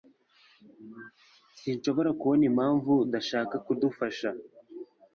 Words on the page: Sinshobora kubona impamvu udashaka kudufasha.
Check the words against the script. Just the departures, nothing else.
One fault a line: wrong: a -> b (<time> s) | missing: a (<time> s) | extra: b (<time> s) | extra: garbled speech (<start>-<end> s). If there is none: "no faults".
no faults